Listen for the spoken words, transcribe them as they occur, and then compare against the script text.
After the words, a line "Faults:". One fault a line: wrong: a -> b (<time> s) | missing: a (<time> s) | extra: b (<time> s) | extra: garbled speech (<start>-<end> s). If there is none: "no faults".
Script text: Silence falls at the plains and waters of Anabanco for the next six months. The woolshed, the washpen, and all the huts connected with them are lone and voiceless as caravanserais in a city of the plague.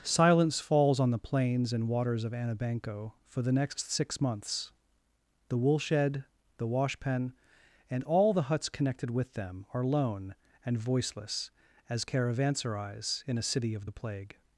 Silence falls on the plains and waters of Anabanco for the next six months. The woolshed, the washpen, and all the huts connected with them are lone and voiceless as caravanserais in a city of the plague.
Faults:
wrong: at -> on (1.0 s)